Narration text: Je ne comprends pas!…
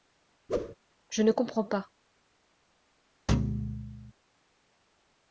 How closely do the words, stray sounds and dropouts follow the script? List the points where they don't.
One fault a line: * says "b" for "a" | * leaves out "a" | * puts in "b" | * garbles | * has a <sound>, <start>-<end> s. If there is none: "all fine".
* has a whoosh, 0.5-0.8 s
* has a thud, 3.3-4.1 s